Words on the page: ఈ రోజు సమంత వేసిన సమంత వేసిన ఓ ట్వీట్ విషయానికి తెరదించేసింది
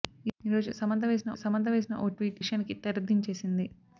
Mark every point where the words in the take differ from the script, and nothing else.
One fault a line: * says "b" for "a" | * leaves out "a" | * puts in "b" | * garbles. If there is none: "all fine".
all fine